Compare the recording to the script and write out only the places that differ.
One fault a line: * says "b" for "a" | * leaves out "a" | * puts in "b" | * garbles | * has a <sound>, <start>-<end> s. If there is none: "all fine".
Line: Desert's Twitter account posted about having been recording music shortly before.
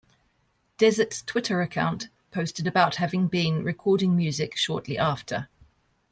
* says "after" for "before"